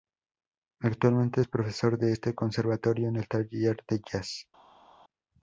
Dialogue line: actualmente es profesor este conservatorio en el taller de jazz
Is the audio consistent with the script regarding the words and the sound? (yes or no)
no